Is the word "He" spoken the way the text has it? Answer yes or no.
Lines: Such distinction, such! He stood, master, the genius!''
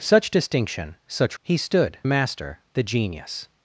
yes